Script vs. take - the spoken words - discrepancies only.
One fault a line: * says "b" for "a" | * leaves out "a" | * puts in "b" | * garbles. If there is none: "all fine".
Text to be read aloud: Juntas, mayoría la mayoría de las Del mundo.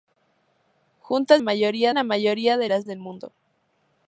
all fine